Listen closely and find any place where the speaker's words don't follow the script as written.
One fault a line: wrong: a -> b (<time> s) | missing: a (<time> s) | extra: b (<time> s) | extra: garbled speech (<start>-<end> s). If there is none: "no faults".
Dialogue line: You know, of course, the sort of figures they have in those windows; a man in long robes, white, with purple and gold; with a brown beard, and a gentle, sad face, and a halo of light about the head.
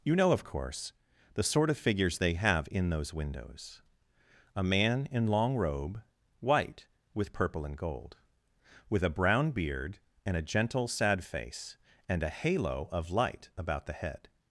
wrong: robes -> robe (5.5 s)